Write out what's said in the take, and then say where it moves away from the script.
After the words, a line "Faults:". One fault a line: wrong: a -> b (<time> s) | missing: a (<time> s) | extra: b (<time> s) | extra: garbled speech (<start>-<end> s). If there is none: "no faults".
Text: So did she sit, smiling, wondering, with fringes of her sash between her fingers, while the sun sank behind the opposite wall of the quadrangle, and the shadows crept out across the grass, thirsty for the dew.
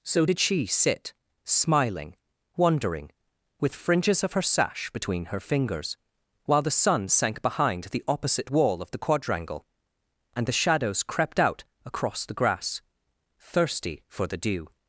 So did she sit, smiling, wondering, with fringes of her sash between her fingers, while the sun sank behind the opposite wall of the quadrangle, and the shadows crept out across the grass, thirsty for the dew.
Faults:
no faults